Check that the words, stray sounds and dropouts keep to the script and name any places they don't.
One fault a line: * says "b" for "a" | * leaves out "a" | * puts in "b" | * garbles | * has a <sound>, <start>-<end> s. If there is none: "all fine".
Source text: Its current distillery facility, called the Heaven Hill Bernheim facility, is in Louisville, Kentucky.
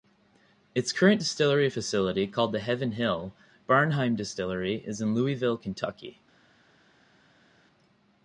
* says "distillery" for "facility"